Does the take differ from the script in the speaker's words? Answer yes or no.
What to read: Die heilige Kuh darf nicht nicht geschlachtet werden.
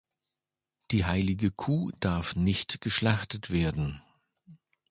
yes